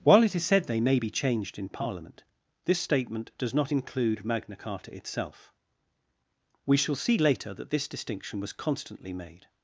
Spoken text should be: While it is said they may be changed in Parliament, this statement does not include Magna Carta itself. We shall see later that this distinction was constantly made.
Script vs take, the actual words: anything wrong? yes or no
no